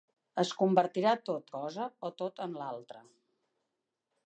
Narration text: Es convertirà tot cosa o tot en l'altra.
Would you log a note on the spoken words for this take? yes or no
no